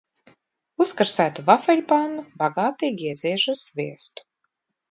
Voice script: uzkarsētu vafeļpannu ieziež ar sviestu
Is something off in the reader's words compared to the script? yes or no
yes